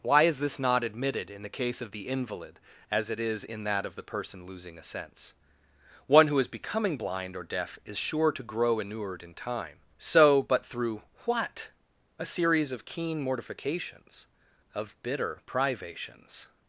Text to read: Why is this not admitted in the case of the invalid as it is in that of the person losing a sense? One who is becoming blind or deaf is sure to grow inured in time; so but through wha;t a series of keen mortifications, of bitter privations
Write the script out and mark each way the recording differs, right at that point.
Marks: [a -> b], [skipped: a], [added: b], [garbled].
Why is this not admitted in the case of the invalid as it is in that of the person losing a sense? One who is becoming blind or deaf is sure to grow inured in time; so but through wha;t a series of keen mortifications, of bitter privations